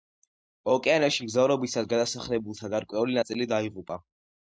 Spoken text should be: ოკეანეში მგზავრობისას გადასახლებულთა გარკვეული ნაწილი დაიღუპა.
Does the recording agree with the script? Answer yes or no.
yes